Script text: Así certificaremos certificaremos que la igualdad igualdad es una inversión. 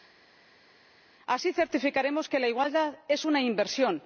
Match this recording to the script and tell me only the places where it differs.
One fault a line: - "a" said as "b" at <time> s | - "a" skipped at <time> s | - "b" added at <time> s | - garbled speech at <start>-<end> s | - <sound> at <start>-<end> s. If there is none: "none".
- "certificaremos" skipped at 2.3 s
- "igualdad" skipped at 3.0 s